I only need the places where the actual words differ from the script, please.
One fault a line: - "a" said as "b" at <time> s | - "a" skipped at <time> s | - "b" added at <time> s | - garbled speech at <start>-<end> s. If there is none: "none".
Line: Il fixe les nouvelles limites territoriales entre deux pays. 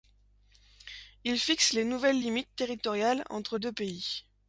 none